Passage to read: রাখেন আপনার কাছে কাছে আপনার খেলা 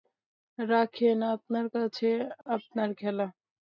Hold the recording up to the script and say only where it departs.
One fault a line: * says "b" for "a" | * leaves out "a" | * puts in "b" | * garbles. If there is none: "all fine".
* leaves out "কাছে"